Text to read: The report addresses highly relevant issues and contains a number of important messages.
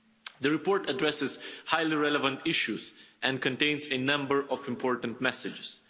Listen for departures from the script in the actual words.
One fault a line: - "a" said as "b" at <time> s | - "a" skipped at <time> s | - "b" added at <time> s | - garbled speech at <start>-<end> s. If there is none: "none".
none